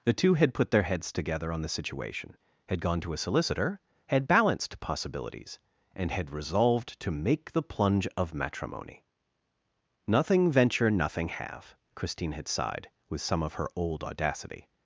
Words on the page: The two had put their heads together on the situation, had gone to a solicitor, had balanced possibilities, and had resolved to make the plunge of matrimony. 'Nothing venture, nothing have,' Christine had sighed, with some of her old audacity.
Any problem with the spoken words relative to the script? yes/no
no